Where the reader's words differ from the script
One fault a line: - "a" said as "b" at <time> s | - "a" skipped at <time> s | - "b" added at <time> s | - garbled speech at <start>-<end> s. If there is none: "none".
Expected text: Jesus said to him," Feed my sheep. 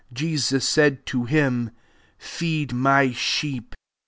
none